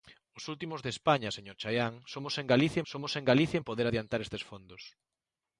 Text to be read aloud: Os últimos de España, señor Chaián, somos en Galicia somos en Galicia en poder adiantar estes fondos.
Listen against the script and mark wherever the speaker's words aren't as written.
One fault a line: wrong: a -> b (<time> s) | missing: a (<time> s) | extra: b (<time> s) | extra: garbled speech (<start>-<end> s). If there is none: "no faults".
no faults